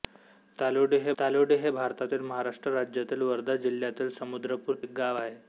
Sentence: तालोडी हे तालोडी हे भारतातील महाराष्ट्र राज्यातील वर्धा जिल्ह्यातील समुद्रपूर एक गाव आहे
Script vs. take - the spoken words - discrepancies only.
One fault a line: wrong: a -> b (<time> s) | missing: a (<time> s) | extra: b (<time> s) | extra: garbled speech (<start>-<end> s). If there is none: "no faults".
no faults